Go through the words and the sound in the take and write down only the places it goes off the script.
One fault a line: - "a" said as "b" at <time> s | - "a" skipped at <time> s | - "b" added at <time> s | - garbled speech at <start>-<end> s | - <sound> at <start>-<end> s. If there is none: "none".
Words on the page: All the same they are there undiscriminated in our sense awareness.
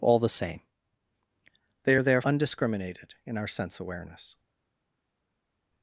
none